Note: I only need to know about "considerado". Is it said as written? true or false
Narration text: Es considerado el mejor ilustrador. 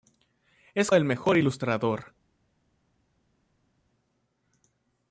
false